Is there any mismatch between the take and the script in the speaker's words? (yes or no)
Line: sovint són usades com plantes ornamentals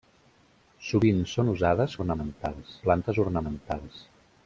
yes